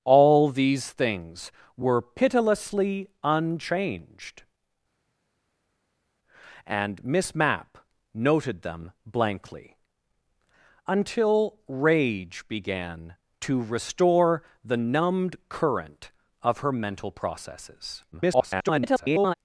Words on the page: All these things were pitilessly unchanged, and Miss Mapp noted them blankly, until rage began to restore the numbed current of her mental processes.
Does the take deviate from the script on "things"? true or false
false